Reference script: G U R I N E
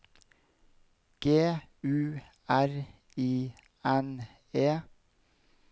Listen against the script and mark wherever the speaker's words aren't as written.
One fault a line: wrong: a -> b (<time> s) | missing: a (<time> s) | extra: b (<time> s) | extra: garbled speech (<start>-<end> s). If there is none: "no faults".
no faults